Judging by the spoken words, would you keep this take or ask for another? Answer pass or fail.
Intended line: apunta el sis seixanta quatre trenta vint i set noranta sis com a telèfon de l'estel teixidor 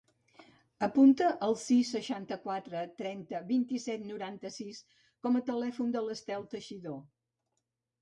pass